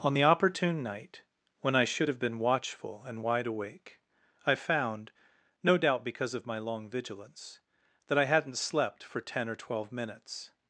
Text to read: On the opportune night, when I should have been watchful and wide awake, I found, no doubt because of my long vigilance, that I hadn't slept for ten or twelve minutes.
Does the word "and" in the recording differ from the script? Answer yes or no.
no